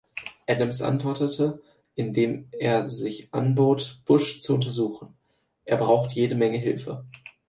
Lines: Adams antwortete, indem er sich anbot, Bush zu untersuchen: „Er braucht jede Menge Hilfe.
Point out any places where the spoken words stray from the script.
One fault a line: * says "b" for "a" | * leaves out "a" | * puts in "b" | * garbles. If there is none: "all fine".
all fine